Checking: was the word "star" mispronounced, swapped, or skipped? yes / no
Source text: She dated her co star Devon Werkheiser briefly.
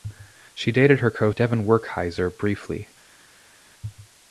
yes